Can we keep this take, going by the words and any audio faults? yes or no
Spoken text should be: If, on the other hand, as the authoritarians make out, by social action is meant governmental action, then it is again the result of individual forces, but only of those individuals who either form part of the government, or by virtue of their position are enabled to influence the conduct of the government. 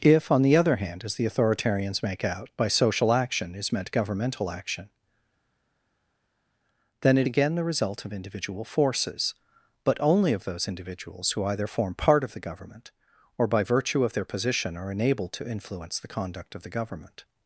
no